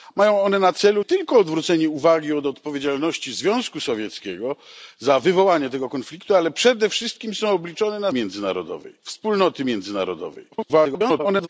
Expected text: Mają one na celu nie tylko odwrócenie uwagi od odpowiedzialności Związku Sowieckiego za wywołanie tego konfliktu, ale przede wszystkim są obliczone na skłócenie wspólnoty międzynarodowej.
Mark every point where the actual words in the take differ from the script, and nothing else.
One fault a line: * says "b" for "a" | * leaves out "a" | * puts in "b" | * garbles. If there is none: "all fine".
* leaves out "nie"
* says "międzynarodowej" for "skłócenie"
* garbles